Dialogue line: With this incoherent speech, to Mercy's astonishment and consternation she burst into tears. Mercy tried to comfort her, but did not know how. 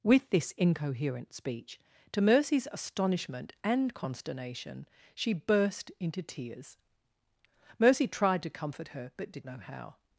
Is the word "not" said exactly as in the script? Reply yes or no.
no